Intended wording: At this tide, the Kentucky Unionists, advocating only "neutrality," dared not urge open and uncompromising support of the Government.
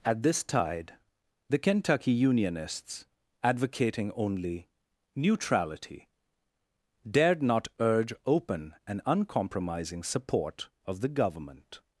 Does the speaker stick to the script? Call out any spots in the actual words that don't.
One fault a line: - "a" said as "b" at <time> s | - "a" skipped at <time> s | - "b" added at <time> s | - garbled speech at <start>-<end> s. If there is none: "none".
none